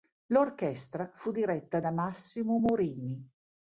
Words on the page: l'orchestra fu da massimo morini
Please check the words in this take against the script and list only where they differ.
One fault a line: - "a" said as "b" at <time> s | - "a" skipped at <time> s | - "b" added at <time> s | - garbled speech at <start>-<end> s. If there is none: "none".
- "diretta" added at 1.3 s